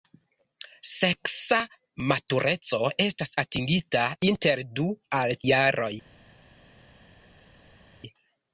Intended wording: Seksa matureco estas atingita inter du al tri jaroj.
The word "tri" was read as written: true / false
false